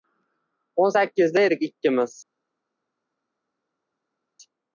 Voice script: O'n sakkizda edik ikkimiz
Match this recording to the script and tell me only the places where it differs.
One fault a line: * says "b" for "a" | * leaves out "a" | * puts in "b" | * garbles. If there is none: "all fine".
all fine